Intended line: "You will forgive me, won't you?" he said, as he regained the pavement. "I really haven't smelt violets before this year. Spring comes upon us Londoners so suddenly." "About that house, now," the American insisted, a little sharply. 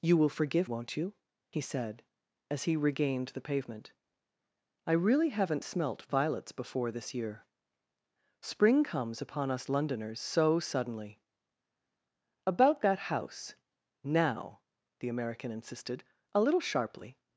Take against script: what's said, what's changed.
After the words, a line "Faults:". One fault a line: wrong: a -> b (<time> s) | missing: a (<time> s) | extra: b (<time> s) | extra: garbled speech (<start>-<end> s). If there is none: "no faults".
"You will forgive won't you?" he said, as he regained the pavement. "I really haven't smelt violets before this year. Spring comes upon us Londoners so suddenly." "About that house, now," the American insisted, a little sharply.
Faults:
missing: me (0.7 s)